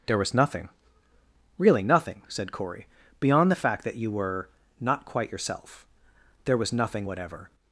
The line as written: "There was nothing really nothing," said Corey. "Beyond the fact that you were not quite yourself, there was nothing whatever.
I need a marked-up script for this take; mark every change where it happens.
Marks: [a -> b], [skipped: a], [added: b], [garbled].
"There was nothing really nothing," said Corey. "Beyond the fact that you were not quite yourself, there was nothing whatever.